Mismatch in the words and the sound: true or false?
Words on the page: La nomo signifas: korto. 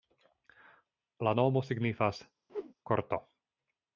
true